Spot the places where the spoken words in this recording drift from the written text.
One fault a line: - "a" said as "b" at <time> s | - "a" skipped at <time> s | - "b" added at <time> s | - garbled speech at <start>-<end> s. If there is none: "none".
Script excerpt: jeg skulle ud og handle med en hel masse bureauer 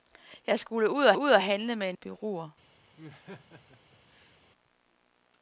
- "ud og" added at 1.1 s
- "hel masse" skipped at 2.0 s